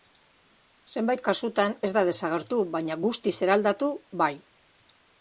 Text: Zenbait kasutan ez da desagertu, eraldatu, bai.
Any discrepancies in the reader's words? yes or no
yes